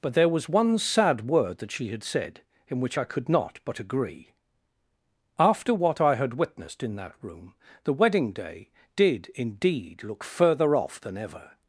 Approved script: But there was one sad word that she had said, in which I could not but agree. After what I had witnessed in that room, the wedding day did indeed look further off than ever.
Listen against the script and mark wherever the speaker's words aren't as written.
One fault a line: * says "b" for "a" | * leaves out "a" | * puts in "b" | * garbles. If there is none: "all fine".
all fine